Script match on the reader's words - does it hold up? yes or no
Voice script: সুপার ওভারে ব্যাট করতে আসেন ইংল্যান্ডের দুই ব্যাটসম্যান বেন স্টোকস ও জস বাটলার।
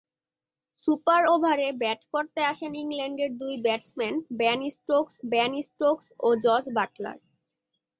no